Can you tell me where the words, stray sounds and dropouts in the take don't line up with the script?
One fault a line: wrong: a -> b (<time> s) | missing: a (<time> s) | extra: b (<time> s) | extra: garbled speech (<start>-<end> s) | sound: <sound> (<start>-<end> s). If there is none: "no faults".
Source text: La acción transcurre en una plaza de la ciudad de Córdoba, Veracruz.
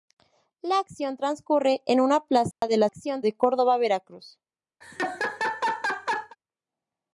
sound: dropout (2.5-2.6 s)
wrong: ciudad -> acción (2.8 s)
sound: laugh (4.8-6.4 s)